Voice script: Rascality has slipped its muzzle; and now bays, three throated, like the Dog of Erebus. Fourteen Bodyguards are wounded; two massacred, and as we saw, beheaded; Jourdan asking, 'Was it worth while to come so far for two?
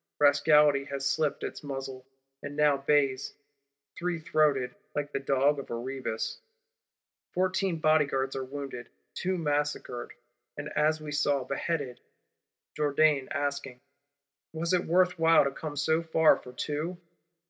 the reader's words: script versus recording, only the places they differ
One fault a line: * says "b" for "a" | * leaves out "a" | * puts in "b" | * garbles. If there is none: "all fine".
all fine